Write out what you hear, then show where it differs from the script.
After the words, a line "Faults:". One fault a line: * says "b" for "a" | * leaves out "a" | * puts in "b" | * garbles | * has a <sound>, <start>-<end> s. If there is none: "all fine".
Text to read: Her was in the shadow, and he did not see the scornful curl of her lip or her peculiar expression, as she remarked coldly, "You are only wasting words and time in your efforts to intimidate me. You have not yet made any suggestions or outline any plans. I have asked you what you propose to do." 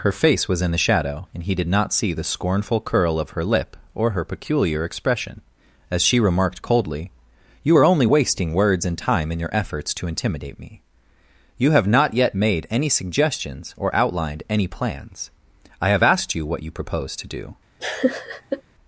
Her face was in the shadow, and he did not see the scornful curl of her lip or her peculiar expression, as she remarked coldly, "You are only wasting words and time in your efforts to intimidate me. You have not yet made any suggestions or outlined any plans. I have asked you what you propose to do."
Faults:
* puts in "face"
* says "outlined" for "outline"
* has a laugh, 17.8-18.6 s